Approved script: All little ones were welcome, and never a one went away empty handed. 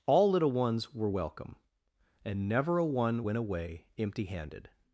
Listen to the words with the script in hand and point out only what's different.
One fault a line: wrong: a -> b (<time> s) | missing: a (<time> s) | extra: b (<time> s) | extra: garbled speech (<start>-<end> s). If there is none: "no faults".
no faults